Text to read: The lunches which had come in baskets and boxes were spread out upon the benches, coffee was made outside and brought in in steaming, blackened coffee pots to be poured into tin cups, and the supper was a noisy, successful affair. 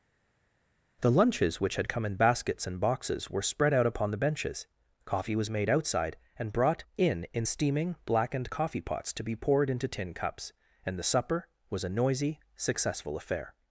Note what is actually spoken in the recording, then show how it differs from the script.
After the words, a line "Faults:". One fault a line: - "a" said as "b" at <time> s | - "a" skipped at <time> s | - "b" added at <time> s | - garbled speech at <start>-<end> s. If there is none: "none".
The lunches which had come in baskets and boxes were spread out upon the benches, coffee was made outside and brought in in steaming, blackened coffee pots to be poured into tin cups, and the supper was a noisy, successful affair.
Faults:
none